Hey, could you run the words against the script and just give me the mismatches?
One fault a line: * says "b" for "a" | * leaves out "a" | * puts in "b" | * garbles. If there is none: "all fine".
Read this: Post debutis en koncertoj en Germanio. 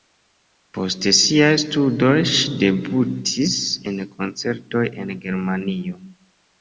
* puts in "siaj studoj ŝi"